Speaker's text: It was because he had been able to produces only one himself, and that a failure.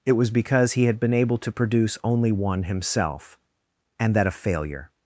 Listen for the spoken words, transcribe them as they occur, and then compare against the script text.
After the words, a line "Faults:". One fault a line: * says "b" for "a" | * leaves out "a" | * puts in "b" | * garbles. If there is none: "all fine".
It was because he had been able to produce only one himself, and that a failure.
Faults:
* says "produce" for "produces"